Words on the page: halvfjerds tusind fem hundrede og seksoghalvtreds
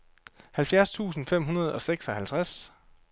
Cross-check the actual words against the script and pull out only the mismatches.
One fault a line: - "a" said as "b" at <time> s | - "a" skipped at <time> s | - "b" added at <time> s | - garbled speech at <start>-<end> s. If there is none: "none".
none